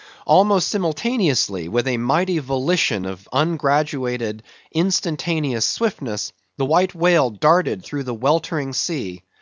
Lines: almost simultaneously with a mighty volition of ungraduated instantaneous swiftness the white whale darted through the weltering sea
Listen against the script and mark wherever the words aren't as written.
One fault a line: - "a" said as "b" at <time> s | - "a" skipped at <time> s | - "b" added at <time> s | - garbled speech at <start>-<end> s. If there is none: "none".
none